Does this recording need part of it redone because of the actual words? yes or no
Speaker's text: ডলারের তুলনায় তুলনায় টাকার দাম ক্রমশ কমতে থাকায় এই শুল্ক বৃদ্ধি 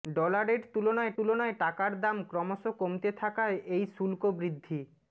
no